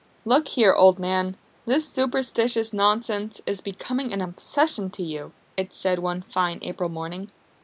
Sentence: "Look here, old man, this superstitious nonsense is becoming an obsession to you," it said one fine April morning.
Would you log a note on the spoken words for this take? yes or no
no